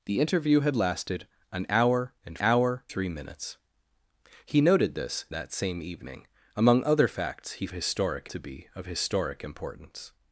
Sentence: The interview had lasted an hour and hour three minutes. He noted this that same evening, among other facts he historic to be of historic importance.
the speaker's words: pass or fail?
pass